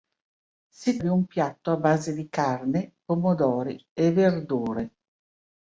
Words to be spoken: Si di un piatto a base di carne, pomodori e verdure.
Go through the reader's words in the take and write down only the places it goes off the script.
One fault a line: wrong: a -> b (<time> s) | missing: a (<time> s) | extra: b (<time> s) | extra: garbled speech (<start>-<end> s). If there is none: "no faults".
no faults